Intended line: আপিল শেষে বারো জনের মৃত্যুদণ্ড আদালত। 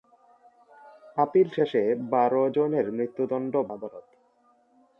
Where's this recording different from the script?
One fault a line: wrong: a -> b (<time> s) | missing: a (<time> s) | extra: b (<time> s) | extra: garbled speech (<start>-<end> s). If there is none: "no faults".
no faults